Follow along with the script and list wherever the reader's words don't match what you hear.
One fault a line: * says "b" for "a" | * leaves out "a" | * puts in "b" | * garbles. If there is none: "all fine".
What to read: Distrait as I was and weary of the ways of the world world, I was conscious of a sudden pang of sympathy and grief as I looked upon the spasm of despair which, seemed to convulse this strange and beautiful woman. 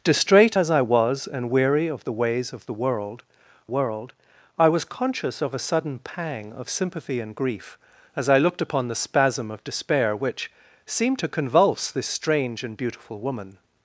all fine